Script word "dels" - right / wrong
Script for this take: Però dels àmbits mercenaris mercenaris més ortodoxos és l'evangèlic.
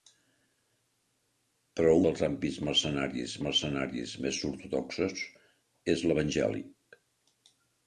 right